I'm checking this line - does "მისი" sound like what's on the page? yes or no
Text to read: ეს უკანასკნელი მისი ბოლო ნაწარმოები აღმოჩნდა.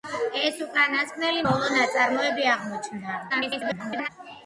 no